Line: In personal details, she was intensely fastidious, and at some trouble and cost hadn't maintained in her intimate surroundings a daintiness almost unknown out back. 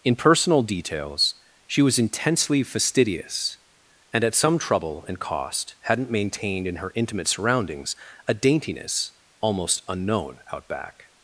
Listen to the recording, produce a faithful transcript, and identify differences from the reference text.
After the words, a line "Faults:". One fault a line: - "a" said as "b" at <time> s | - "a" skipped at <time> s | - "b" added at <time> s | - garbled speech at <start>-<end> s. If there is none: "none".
In personal details, she was intensely fastidious, and at some trouble and cost hadn't maintained in her intimate surroundings a daintiness almost unknown out back.
Faults:
none